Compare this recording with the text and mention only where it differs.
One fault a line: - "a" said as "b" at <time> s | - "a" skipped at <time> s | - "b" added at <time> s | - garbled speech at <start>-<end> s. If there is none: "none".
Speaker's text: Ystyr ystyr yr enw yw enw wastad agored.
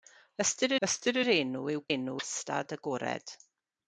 none